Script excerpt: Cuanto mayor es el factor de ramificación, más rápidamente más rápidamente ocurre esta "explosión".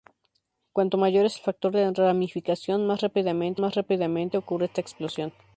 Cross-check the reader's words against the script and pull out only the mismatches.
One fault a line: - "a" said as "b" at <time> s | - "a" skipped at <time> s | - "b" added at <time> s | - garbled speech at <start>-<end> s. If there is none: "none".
none